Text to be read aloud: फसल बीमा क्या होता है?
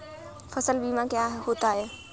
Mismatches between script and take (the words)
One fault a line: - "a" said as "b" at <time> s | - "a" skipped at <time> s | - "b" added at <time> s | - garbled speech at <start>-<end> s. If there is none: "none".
none